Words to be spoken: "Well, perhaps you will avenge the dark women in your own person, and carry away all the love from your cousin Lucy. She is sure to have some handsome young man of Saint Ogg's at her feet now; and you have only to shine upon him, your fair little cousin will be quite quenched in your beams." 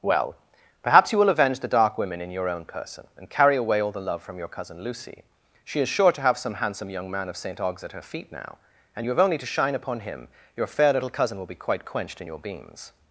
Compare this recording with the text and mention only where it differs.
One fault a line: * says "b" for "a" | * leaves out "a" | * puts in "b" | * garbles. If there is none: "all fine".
all fine